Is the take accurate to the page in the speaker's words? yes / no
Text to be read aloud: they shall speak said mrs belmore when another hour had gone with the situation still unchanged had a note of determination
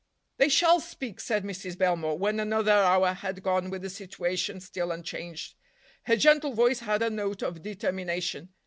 no